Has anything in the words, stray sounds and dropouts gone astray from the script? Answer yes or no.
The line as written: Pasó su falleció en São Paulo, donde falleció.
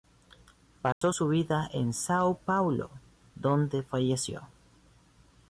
yes